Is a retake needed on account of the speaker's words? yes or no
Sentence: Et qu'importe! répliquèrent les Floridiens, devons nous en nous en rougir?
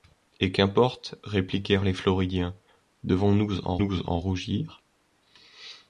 no